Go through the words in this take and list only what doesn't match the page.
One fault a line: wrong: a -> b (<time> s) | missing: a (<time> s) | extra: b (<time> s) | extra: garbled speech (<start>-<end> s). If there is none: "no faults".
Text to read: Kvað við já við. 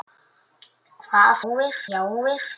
no faults